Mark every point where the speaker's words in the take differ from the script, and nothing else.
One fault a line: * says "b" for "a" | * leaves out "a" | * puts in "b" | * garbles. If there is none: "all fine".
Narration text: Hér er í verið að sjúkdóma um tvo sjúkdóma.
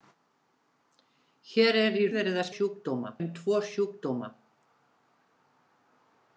all fine